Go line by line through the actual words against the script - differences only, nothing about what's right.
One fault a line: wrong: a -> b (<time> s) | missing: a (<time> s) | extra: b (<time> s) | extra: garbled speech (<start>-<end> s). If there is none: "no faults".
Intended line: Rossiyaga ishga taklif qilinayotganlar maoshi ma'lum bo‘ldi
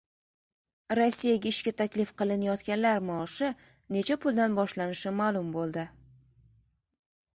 extra: necha puldan boshlanishi (4.0 s)